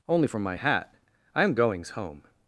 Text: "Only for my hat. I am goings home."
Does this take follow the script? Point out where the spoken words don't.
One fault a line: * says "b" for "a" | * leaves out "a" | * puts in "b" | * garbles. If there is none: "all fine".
all fine